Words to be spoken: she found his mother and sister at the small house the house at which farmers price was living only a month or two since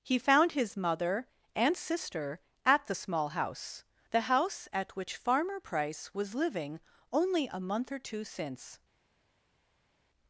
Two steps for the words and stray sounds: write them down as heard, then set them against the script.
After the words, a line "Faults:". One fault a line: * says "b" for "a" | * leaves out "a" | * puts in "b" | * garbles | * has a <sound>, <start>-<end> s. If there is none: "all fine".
he found his mother and sister at the small house the house at which farmer price was living only a month or two since
Faults:
* says "he" for "she"
* says "farmer" for "farmers"